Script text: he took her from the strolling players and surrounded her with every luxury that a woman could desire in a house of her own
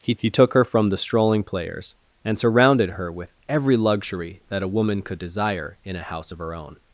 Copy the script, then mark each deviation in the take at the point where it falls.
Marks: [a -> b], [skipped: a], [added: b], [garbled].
he [added: he] took her from the strolling players and surrounded her with every luxury that a woman could desire in a house of her own